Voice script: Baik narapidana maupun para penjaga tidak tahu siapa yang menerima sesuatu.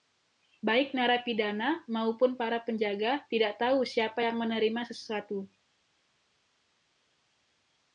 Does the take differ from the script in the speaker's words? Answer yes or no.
no